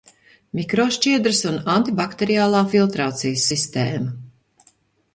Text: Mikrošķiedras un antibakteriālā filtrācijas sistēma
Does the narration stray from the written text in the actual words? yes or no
no